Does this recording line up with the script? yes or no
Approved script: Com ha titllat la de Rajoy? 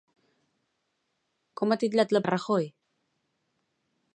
yes